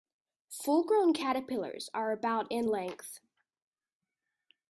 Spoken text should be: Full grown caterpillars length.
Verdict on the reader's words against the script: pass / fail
fail